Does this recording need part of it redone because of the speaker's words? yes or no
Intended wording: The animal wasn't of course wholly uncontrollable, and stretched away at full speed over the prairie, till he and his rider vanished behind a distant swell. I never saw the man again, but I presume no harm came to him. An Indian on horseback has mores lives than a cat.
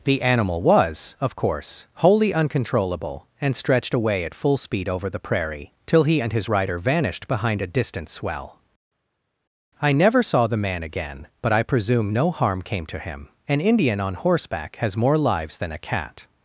yes